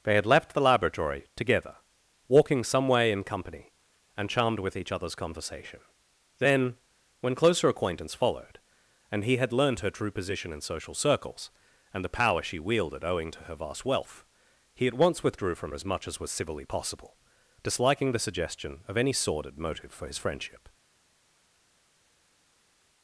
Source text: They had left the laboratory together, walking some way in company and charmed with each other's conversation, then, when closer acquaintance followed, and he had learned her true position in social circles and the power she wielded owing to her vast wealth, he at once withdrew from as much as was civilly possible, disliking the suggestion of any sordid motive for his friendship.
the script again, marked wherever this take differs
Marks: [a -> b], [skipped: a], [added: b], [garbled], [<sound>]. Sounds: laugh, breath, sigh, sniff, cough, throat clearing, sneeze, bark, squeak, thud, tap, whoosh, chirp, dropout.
They had left the laboratory together, walking some way in company and charmed with each other's conversation, then, when closer acquaintance followed, and he had learned her true position in social circles and the power she wielded owing to her vast wealth, he at once withdrew from as much as was civilly possible, disliking the suggestion of any sordid motive for his friendship.